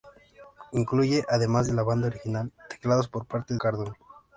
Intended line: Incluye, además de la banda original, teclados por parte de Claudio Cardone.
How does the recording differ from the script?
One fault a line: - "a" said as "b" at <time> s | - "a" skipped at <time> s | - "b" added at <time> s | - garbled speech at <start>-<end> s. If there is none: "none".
- "de Claudio" skipped at 3.5 s